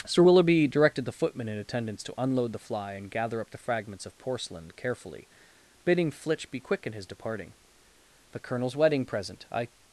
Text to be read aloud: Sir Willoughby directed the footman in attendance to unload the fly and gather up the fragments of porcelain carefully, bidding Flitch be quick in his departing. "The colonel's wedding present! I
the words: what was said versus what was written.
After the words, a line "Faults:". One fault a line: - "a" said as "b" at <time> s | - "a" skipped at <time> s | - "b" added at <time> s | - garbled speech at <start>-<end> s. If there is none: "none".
Sir Willoughby directed the footman in attendance to unload the fly and gather up the fragments of porcelain carefully, bidding Flitch be quick in his departing. "The colonel's wedding present! I
Faults:
none